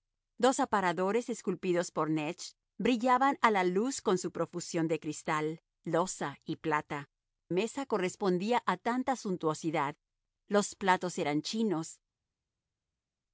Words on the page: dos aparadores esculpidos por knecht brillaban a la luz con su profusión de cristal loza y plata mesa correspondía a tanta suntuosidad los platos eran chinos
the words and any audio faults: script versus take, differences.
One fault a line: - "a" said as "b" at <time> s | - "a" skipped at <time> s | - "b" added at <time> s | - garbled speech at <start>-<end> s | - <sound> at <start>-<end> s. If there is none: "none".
none